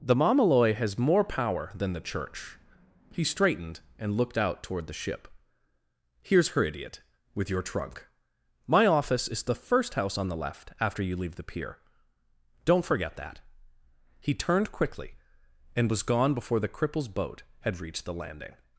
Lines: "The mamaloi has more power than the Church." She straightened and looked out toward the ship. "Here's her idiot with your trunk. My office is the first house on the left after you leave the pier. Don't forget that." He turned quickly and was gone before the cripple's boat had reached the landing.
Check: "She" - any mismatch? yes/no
yes